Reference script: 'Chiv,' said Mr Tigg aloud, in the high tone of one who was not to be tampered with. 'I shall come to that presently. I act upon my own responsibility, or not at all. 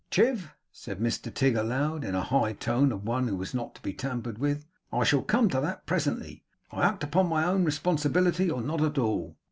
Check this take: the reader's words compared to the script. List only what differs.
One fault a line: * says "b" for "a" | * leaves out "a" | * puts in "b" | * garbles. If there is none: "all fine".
all fine